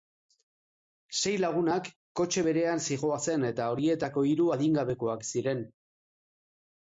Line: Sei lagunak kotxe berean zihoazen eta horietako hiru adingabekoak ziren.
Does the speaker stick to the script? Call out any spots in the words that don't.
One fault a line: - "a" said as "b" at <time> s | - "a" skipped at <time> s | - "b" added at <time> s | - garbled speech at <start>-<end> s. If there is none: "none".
none